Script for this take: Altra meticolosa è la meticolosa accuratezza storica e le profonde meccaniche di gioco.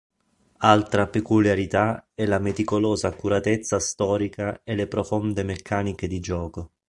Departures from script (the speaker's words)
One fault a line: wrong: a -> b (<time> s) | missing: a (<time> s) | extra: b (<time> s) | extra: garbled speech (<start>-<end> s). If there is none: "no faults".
wrong: meticolosa -> peculiarità (1.1 s)